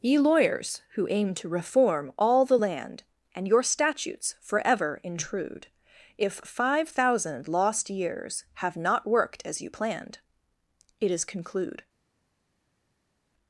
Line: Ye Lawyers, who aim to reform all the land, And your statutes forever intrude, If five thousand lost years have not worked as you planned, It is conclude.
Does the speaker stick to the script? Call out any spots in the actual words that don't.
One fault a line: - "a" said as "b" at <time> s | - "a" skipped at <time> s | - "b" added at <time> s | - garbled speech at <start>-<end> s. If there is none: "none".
none